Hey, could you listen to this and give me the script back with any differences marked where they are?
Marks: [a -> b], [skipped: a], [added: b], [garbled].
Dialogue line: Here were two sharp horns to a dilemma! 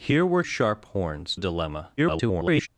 Here were [skipped: two] sharp horns [skipped: to] a dilemma! [garbled]